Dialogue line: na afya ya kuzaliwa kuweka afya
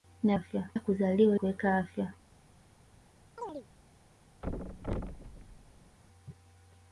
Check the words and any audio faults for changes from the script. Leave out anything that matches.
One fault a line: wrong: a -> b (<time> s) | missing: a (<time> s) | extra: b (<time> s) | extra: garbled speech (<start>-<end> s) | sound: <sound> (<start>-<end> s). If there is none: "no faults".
sound: chirp (3.4-3.7 s)
sound: thud (4.4-6.0 s)